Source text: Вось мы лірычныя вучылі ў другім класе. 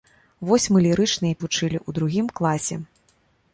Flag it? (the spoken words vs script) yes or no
no